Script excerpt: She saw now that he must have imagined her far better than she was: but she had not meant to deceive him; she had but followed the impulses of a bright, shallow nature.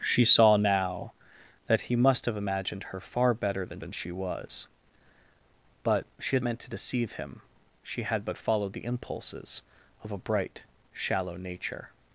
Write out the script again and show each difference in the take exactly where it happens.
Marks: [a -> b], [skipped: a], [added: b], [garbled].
She saw now that he must have imagined her far better than [added: than] she was: but she had [skipped: not] meant to deceive him; she had but followed the impulses of a bright, shallow nature.